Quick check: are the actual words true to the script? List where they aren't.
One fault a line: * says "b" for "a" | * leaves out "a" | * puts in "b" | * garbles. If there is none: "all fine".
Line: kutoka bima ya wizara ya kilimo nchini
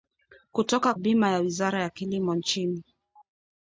all fine